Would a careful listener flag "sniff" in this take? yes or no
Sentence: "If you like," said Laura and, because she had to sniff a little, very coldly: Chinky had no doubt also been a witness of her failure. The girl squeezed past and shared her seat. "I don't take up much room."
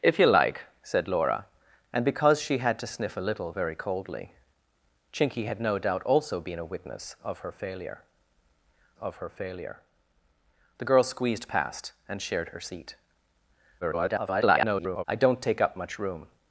no